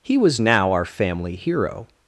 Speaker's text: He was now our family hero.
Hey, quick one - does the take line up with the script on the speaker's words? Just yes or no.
yes